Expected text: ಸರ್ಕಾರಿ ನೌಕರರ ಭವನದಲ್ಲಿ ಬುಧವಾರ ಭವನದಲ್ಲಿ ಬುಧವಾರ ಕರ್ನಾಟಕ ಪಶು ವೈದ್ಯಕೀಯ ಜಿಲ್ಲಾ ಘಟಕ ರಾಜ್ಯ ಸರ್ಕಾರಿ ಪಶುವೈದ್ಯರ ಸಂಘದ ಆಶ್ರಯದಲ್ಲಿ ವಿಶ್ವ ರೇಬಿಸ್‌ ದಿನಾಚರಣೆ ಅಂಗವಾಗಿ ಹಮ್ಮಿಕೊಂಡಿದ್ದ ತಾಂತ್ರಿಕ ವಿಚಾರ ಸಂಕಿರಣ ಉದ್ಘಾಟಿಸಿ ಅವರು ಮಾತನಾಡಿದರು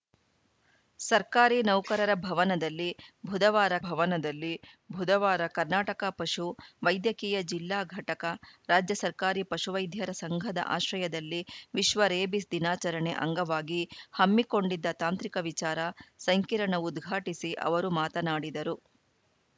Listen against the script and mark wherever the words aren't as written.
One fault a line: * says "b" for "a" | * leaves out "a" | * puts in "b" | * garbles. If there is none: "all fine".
all fine